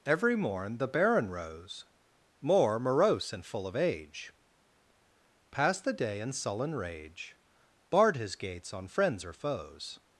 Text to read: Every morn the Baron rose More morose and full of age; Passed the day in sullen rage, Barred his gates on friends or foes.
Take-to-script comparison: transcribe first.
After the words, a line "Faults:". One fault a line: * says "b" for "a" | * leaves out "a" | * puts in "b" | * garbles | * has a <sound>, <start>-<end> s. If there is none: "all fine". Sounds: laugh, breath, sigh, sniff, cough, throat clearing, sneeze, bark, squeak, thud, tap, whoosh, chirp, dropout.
Every morn the Baron rose More morose and full of age; Passed the day in sullen rage, Barred his gates on friends or foes.
Faults:
all fine